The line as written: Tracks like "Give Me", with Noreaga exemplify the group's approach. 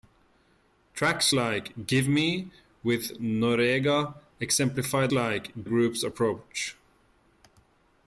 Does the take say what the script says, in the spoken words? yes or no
no